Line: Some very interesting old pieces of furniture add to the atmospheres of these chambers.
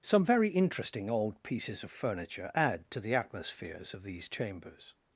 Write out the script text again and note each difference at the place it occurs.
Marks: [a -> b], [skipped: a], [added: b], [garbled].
Some very interesting old pieces of furniture add to the atmospheres of these chambers.